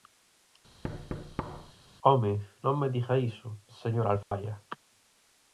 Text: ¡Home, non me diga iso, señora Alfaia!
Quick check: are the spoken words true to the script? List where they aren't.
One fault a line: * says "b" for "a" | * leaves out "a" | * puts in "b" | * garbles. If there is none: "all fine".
all fine